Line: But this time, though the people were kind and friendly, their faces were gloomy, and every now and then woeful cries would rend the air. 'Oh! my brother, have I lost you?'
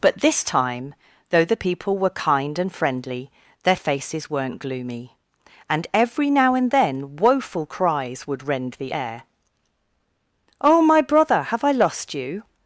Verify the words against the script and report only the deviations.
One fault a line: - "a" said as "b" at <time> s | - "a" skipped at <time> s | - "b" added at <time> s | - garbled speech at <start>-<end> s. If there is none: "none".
- "were" said as "weren't" at 4.3 s